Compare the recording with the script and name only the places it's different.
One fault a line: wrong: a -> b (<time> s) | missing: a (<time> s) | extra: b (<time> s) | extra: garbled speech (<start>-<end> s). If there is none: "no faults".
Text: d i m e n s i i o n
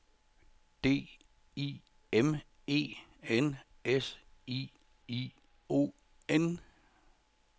no faults